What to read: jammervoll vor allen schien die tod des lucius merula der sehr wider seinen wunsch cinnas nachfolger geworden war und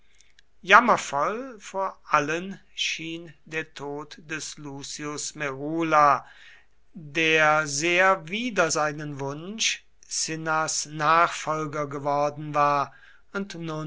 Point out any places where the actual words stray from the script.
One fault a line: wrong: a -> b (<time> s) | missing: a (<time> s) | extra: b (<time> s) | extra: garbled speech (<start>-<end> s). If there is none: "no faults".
wrong: die -> der (3.5 s)